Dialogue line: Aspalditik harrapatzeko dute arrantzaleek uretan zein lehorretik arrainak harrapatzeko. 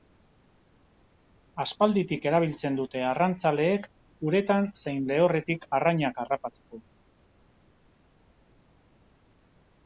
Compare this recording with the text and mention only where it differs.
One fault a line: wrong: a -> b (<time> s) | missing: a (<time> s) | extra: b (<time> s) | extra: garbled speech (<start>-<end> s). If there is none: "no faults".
wrong: harrapatzeko -> erabiltzen (2.3 s)